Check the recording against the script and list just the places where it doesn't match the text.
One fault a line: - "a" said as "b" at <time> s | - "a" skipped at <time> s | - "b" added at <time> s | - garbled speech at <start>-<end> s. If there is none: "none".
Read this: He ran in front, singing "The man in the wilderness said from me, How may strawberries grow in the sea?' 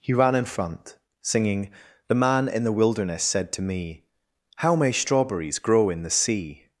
- "from" said as "to" at 3.5 s